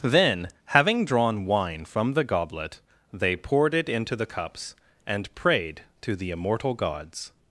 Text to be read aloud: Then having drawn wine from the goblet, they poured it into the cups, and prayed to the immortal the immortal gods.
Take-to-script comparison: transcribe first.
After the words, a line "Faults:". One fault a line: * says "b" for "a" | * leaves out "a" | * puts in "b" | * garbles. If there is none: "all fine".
Then having drawn wine from the goblet, they poured it into the cups, and prayed to the immortal gods.
Faults:
* leaves out "the immortal"